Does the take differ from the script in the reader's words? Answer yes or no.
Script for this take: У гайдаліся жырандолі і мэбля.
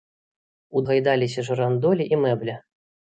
no